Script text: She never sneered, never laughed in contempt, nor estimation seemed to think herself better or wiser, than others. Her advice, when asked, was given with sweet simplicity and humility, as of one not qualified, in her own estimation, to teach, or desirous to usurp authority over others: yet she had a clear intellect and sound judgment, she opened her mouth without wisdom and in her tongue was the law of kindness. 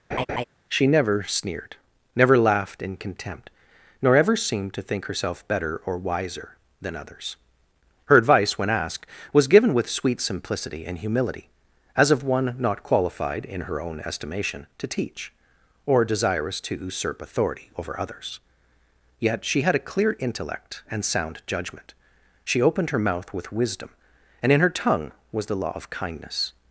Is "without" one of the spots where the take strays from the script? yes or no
yes